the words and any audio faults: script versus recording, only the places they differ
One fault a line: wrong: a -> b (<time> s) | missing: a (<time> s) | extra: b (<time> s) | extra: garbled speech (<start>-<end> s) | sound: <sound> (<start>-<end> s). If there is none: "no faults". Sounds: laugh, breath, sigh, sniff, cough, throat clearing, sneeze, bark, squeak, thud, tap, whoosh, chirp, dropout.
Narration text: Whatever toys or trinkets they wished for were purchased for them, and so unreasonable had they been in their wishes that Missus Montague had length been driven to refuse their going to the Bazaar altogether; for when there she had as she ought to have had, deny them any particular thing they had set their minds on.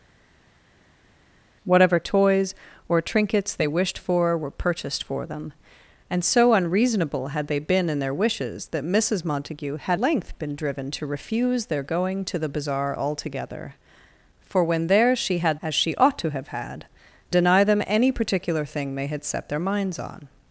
no faults